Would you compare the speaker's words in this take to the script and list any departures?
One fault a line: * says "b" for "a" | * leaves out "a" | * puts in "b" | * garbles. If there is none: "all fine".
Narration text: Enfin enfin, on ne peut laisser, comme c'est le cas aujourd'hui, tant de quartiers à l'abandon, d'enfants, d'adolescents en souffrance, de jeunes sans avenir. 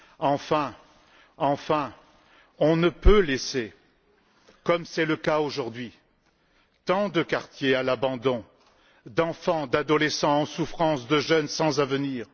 all fine